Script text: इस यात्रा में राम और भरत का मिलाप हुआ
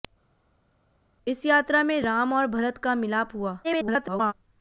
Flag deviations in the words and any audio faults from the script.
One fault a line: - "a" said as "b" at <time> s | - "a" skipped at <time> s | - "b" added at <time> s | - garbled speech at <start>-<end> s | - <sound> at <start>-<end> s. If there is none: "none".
- garbled speech at 3.6-4.3 s